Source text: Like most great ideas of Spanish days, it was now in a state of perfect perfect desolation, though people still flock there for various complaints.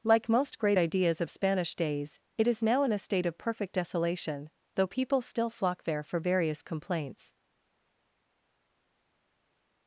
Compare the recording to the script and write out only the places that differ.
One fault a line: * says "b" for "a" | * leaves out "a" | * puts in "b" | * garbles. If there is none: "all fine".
* says "is" for "was"
* leaves out "perfect"